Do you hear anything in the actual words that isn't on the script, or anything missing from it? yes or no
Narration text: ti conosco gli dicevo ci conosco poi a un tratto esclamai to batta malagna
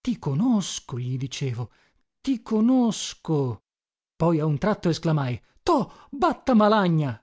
yes